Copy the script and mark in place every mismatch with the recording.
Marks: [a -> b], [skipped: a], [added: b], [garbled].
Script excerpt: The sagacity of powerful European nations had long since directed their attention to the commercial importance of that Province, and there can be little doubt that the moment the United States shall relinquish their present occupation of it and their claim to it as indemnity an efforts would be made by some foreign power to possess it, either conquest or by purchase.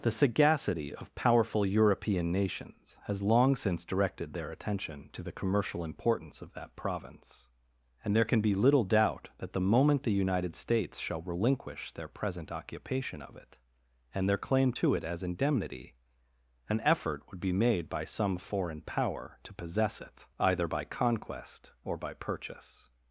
The sagacity of powerful European nations [had -> has] long since directed their attention to the commercial importance of that Province, and there can be little doubt that the moment the United States shall relinquish their present occupation of it and their claim to it as indemnity an [efforts -> effort] would be made by some foreign power to possess it, either [added: by] conquest or by purchase.